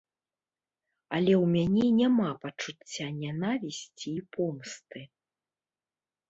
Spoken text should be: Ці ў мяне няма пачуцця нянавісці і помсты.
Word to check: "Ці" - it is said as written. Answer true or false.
false